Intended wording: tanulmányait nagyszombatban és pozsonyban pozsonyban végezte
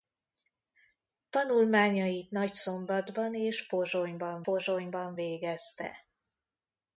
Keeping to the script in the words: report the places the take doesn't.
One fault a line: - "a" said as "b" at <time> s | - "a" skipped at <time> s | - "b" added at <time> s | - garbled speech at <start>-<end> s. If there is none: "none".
none